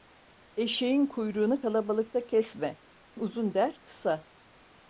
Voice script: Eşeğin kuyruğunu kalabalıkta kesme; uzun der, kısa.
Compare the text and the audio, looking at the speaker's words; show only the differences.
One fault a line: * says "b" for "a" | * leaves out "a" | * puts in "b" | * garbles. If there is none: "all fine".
all fine